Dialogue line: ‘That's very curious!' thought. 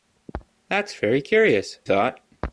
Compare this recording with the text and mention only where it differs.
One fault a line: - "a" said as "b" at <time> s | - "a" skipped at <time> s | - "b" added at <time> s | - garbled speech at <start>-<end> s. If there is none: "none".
none